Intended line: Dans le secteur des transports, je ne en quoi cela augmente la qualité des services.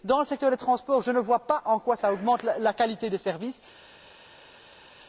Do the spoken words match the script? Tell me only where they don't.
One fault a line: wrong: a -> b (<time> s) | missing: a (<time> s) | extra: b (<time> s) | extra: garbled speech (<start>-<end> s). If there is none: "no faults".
extra: vois pas (1.2 s)